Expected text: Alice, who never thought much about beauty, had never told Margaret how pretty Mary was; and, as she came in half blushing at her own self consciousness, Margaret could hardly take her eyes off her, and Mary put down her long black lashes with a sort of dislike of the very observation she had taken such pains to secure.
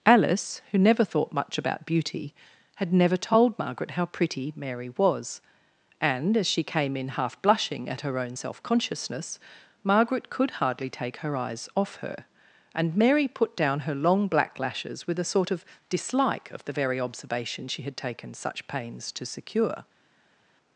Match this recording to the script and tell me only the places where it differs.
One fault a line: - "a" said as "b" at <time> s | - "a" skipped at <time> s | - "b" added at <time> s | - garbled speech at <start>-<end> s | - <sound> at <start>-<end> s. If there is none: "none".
none